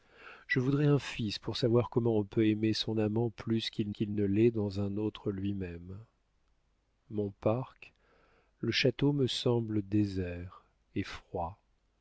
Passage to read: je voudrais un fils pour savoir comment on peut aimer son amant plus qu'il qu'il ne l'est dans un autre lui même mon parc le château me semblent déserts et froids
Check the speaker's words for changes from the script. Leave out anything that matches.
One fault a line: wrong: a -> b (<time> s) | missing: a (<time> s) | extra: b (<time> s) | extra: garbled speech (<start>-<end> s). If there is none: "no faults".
no faults